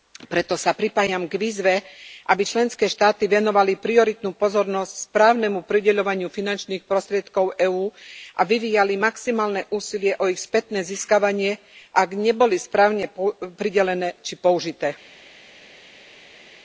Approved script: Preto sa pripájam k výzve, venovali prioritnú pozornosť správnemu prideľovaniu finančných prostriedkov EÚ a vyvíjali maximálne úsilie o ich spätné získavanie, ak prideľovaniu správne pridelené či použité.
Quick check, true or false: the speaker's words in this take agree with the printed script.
false